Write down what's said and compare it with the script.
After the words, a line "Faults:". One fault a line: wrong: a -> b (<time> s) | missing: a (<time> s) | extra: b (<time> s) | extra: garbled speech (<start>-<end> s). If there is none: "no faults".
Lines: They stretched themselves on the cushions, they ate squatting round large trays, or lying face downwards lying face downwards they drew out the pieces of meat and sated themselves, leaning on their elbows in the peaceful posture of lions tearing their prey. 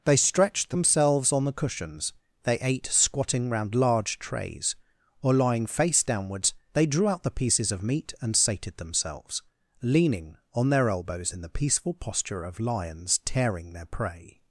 They stretched themselves on the cushions, they ate squatting round large trays, or lying face downwards they drew out the pieces of meat and sated themselves, leaning on their elbows in the peaceful posture of lions tearing their prey.
Faults:
missing: lying face downwards (6.5 s)